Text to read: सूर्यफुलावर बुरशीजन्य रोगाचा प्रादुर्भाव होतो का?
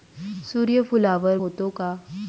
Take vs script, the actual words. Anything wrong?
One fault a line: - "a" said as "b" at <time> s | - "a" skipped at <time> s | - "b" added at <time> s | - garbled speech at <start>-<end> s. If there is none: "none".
- "बुरशीजन्य रोगाचा प्रादुर्भाव" skipped at 1.4 s